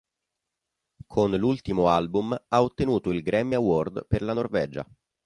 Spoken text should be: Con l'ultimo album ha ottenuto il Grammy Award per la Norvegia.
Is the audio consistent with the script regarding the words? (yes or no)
yes